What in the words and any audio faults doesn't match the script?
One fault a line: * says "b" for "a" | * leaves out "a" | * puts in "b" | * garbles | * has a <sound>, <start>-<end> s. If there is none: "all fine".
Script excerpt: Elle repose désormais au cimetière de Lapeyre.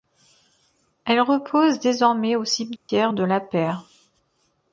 * has a dropout, 2.8-2.9 s